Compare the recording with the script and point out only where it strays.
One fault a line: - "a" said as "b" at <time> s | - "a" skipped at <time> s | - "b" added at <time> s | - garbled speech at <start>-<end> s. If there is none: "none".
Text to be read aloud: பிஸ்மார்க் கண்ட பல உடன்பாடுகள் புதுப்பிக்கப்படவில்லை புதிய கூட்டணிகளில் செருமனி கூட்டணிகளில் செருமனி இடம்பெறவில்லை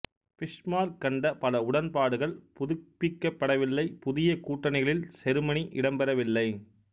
- "கூட்டணிகளில் செருமனி" skipped at 5.7 s